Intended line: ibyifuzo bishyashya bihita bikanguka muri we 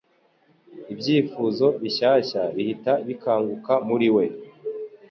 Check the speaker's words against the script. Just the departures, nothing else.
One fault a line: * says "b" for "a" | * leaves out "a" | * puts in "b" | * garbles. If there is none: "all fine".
all fine